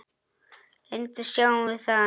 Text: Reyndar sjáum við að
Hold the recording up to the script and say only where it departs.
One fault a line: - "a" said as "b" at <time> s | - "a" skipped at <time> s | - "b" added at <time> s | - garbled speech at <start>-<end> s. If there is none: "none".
none